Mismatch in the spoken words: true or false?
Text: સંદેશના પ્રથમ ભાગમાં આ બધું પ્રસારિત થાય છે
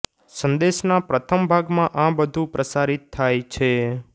false